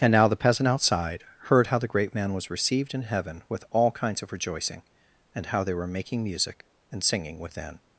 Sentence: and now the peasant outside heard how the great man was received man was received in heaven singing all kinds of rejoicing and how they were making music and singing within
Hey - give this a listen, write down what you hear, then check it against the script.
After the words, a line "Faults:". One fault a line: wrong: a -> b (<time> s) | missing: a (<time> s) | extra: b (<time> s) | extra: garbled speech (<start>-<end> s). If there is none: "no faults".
and now the peasant outside heard how the great man was received in heaven with all kinds of rejoicing and how they were making music and singing within
Faults:
missing: man was received (2.9 s)
wrong: singing -> with (3.5 s)